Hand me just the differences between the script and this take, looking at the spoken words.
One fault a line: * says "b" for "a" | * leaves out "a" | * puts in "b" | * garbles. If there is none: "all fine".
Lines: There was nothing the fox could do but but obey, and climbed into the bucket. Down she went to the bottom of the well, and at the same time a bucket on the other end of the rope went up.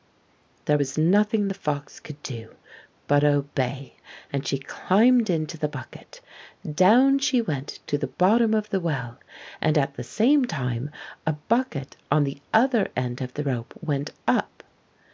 * leaves out "but"
* puts in "she"